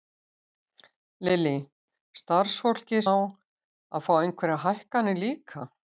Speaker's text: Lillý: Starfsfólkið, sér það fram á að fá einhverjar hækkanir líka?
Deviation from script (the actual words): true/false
true